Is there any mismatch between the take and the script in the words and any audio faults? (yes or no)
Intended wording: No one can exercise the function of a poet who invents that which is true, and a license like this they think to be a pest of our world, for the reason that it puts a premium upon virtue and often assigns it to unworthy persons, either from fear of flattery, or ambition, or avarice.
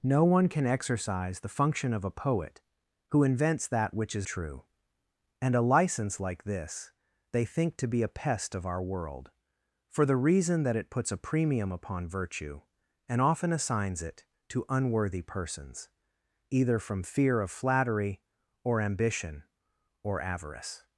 no